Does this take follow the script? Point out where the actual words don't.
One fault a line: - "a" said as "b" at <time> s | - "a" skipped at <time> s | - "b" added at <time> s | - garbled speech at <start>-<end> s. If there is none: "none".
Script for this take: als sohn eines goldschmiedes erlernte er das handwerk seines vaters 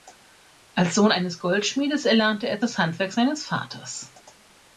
none